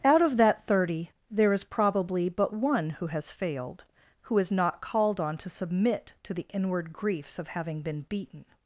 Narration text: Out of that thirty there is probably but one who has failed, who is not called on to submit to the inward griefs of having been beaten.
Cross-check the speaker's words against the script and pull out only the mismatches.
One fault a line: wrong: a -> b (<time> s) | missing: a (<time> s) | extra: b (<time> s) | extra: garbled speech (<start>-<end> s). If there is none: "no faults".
no faults